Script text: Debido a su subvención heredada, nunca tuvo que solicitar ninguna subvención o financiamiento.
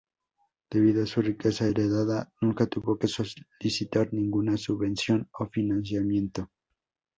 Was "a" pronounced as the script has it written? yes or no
yes